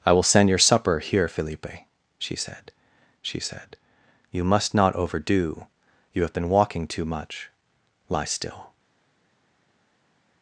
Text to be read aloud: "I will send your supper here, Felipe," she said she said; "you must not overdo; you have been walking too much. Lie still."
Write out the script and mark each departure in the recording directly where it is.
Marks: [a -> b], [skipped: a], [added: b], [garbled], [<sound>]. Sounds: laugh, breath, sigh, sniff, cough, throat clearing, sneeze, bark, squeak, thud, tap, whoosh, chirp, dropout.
"I will send your supper here, Felipe," she said she said; "you must not overdo; you have been walking too much. Lie still."